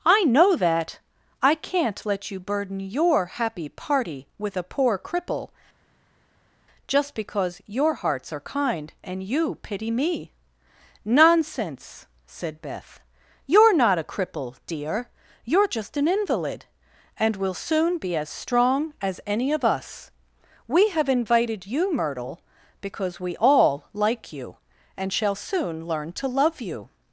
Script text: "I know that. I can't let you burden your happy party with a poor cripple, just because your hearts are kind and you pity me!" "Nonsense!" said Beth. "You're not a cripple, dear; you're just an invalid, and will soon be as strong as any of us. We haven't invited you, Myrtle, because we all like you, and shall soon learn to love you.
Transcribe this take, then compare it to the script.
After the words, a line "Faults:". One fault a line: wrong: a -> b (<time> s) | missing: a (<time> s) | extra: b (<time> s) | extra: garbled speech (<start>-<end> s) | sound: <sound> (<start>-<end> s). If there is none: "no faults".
"I know that. I can't let you burden your happy party with a poor cripple, just because your hearts are kind and you pity me!" "Nonsense!" said Beth. "You're not a cripple, dear; you're just an invalid, and will soon be as strong as any of us. We have invited you, Myrtle, because we all like you, and shall soon learn to love you.
Faults:
wrong: haven't -> have (20.9 s)